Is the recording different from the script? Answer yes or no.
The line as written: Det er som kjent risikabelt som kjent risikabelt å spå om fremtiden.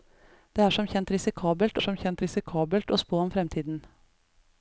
no